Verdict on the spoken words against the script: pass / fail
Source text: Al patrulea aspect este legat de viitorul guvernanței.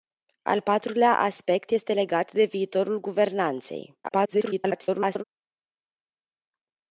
fail